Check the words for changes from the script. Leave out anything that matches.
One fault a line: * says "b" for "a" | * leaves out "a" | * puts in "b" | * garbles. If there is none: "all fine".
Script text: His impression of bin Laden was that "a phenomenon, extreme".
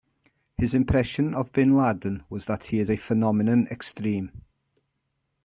* puts in "he is"